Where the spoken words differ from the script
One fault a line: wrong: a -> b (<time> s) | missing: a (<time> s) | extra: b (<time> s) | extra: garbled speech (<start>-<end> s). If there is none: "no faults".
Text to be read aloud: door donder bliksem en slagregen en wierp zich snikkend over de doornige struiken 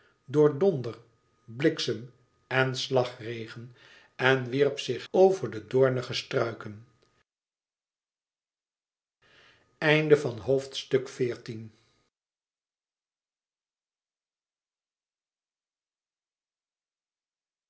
missing: snikkend (5.1 s)